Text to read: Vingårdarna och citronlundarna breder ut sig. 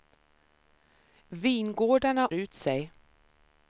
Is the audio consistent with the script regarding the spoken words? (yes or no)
no